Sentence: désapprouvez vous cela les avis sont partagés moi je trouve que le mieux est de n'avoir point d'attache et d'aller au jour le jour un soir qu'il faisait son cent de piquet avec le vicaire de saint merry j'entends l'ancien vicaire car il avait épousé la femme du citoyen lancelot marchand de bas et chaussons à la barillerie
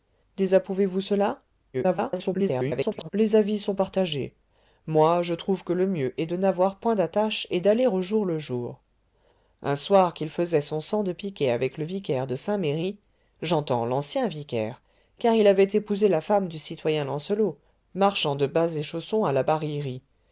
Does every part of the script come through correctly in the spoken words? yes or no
no